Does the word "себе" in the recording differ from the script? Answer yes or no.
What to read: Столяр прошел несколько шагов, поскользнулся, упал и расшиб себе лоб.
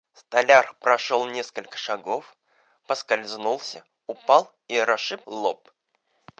yes